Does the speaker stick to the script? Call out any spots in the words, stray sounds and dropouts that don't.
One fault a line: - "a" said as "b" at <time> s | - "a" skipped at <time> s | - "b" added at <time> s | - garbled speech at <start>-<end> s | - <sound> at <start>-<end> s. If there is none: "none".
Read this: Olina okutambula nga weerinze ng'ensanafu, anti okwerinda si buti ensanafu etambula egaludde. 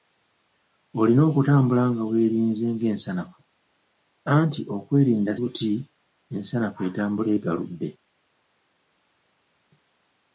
- "si" skipped at 5.3 s